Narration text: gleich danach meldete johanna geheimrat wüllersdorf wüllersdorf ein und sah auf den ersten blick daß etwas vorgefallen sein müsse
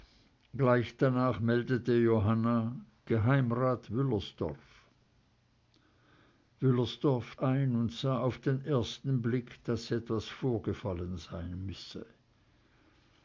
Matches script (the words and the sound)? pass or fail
pass